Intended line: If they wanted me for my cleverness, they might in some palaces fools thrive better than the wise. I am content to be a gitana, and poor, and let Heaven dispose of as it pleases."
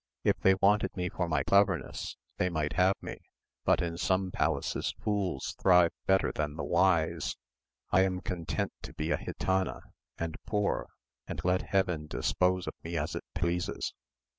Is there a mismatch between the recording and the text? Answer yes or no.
yes